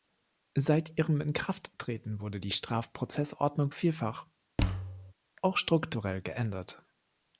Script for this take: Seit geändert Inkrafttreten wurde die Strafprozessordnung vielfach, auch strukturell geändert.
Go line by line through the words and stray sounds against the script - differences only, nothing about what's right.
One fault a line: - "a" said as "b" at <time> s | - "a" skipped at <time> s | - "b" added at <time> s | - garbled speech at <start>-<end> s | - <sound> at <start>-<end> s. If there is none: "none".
- "geändert" said as "ihrem" at 1.0 s
- thud at 4.6-5.1 s